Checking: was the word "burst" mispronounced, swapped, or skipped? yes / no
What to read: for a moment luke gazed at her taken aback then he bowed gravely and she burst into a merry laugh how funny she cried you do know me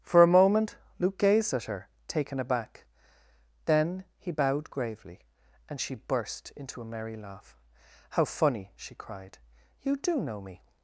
no